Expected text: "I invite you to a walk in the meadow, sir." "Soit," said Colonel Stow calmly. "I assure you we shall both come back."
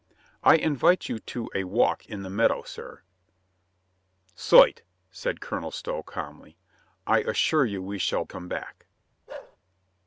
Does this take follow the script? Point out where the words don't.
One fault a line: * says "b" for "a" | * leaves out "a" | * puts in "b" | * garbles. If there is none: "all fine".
* leaves out "both"